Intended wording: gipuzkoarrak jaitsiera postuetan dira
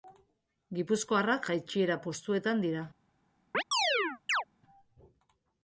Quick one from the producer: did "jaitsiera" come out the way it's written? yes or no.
yes